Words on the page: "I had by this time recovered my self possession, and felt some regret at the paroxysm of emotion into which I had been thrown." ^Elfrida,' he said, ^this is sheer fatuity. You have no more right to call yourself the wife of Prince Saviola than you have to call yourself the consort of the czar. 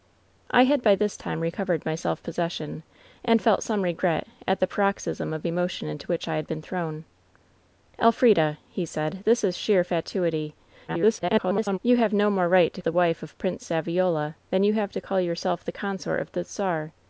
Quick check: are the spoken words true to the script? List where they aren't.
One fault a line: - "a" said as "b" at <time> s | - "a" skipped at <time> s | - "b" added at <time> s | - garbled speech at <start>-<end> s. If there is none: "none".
- garbled speech at 10.9-11.8 s
- "call yourself" skipped at 12.8 s